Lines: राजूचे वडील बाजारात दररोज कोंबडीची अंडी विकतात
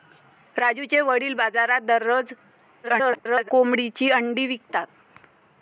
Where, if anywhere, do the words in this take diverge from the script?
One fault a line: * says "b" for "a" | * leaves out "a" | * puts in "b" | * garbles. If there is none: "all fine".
* garbles